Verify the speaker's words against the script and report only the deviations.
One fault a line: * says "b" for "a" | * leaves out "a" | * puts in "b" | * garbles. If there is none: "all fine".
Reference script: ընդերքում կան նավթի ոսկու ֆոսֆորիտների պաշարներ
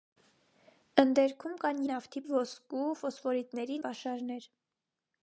all fine